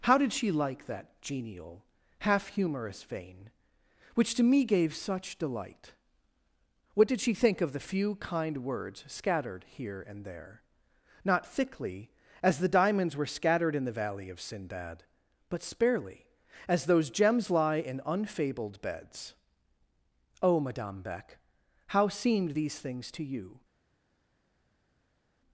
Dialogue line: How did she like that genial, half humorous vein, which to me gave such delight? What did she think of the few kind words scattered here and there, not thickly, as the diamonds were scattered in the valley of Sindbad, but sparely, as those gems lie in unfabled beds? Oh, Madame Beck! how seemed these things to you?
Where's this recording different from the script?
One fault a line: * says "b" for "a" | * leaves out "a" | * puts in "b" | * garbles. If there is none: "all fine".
all fine